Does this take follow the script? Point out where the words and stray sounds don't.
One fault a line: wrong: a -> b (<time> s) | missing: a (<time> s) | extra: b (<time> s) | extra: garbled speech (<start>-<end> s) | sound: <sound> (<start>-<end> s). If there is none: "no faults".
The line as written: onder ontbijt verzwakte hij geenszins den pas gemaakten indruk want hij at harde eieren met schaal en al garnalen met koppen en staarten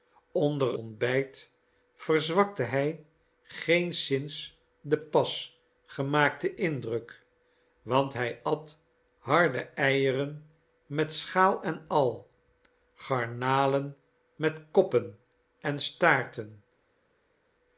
no faults